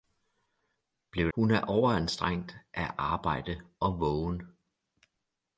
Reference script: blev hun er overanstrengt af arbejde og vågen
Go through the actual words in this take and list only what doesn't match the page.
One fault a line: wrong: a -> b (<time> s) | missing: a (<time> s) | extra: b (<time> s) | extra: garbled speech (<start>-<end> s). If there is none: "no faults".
no faults